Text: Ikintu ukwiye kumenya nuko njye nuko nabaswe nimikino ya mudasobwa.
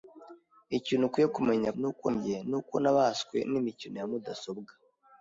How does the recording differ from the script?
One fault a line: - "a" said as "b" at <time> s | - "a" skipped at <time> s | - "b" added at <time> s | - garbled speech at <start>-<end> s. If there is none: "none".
none